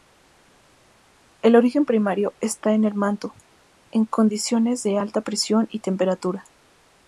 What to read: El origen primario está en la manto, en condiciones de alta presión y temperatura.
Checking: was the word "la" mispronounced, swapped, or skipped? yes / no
yes